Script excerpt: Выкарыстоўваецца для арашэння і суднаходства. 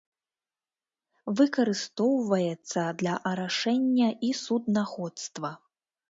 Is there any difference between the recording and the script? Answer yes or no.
no